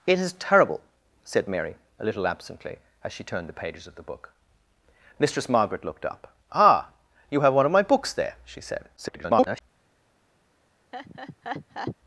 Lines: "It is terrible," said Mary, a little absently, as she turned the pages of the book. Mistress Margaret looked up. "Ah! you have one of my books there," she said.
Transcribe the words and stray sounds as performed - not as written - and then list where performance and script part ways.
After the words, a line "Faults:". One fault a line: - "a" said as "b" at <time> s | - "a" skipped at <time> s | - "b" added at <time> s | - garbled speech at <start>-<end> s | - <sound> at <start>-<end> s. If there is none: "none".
"It is terrible," said Mary, a little absently, as she turned the pages of the book. Mistress Margaret looked up. "Ah! you have one of my books there," she said. [garbled]
Faults:
- garbled speech at 9.0-9.6 s
- laugh at 10.9-12.0 s